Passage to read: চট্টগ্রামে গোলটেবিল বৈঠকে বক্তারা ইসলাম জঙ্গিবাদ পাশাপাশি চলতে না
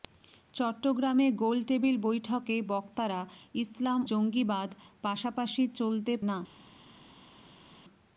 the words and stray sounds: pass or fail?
pass